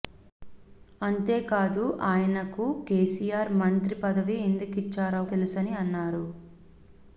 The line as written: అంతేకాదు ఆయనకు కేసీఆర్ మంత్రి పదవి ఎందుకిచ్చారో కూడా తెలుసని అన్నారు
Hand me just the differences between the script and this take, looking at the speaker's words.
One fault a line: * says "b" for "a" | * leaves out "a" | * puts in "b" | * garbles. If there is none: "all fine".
* leaves out "కూడా"